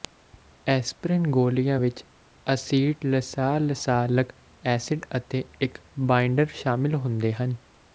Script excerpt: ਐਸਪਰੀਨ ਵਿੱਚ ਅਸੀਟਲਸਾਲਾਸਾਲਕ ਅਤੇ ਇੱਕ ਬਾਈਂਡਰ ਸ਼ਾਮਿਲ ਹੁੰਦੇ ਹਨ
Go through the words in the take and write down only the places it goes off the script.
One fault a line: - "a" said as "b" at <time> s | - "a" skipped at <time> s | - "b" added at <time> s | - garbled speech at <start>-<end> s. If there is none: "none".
- "ਗੋਲੀਆਂ" added at 1.3 s
- "ਐਸਿਡ" added at 4.7 s